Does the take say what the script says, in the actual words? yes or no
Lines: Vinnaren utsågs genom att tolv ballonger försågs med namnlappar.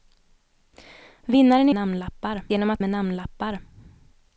no